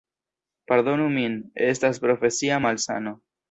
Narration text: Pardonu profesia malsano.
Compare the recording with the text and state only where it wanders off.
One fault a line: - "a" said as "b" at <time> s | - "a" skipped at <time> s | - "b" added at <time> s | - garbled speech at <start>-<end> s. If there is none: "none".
- "min estas" added at 1.2 s